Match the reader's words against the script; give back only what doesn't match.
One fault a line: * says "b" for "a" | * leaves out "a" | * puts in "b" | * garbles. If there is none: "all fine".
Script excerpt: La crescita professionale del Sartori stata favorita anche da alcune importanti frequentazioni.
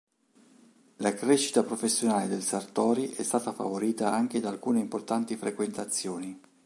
* puts in "è"